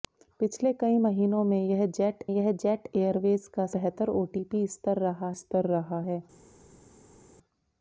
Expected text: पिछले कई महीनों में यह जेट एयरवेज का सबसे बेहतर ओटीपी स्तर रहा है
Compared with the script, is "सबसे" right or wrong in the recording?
wrong